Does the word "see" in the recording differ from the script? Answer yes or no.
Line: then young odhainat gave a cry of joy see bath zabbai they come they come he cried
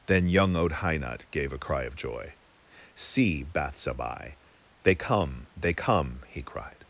no